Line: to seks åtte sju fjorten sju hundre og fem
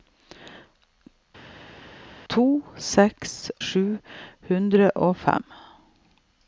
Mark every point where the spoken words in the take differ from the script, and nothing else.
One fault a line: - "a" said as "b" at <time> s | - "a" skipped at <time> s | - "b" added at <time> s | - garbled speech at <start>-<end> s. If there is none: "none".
- "åtte sju fjorten" skipped at 3.4 s